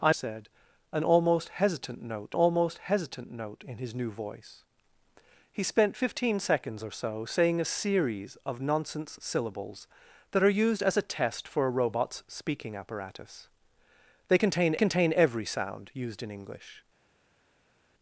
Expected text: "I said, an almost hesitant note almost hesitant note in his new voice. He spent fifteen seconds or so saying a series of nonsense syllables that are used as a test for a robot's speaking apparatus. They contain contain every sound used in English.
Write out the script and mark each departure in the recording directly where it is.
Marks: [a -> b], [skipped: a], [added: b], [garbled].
"I said, an almost hesitant note almost hesitant note in his new voice. He spent fifteen seconds or so saying a series of nonsense syllables that are used as a test for a robot's speaking apparatus. They contain contain every sound used in English.